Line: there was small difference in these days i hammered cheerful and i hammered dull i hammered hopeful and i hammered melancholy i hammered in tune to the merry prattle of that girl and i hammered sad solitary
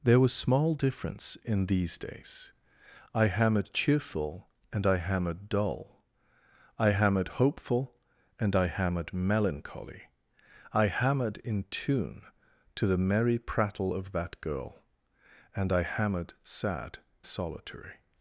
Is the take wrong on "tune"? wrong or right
right